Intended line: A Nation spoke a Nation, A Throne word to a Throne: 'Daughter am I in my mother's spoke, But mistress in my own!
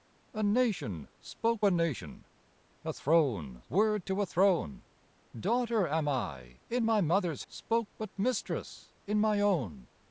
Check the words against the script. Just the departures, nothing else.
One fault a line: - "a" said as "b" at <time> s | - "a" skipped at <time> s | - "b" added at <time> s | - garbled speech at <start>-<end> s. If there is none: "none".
none